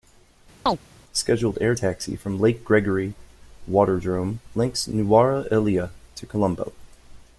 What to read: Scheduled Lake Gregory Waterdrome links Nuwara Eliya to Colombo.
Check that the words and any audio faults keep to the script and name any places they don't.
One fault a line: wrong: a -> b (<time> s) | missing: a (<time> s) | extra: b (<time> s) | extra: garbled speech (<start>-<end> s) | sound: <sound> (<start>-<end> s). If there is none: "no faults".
sound: chirp (0.7-0.8 s)
extra: air taxi from (1.6 s)